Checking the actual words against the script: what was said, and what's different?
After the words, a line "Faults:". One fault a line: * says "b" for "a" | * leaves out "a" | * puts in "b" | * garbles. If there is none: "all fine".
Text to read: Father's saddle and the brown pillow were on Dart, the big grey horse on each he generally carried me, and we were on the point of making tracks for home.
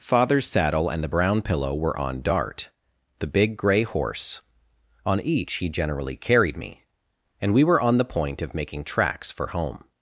Father's saddle and the brown pillow were on Dart, the big grey horse on each he generally carried me, and we were on the point of making tracks for home.
Faults:
all fine